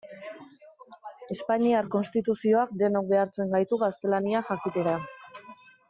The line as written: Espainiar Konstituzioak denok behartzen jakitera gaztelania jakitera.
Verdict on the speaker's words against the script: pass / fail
fail